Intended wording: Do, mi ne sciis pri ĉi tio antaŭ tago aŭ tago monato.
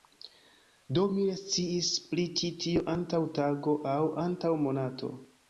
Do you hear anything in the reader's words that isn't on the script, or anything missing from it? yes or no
yes